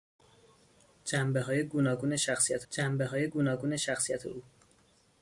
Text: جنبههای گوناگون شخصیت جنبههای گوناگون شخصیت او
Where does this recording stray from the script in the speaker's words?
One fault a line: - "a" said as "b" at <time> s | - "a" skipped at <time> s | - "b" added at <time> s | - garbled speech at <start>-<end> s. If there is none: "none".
none